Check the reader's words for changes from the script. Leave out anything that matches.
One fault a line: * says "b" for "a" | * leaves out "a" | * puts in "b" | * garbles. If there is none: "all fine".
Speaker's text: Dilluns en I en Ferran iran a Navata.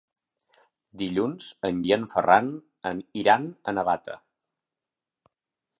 all fine